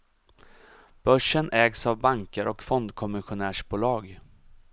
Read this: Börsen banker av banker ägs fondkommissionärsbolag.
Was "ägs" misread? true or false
true